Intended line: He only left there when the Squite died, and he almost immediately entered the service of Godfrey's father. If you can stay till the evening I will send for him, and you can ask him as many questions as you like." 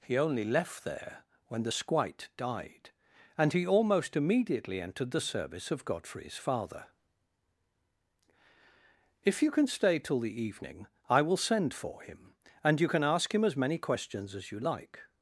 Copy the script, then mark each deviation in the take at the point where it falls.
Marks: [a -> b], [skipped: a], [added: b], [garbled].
He only left there when the Squite died, and he almost immediately entered the service of Godfrey's father. If you can stay till the evening I will send for him, and you can ask him as many questions as you like."